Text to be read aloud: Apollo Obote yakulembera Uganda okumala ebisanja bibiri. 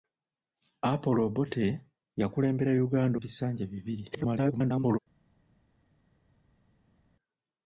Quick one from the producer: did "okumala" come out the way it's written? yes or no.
no